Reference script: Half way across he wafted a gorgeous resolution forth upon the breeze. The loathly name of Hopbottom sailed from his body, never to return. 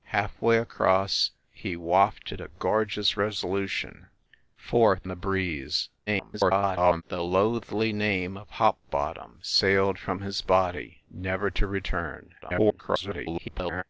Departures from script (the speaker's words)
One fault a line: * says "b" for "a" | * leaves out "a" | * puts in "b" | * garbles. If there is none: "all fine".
* leaves out "upon"
* garbles
* garbles